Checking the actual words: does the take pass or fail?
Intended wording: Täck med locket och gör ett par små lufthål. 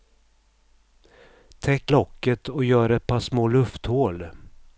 fail